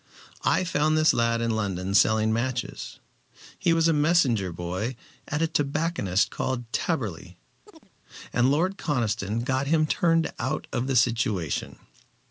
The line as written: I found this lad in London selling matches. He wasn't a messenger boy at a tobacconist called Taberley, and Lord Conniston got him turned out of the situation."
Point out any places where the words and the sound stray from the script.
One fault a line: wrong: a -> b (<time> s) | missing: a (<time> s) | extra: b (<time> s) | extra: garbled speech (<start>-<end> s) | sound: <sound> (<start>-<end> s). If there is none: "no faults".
wrong: wasn't -> was (3.7 s)
sound: chirp (7.7-7.9 s)